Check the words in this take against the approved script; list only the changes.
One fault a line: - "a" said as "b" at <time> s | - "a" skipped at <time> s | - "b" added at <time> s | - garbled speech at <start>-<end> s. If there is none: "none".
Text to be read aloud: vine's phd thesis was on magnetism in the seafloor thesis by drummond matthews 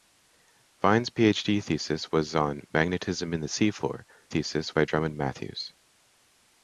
none